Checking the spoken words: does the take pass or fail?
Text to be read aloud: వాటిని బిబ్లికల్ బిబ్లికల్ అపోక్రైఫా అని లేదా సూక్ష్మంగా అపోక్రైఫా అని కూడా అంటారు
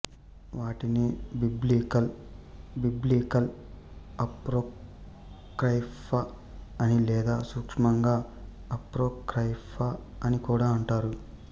pass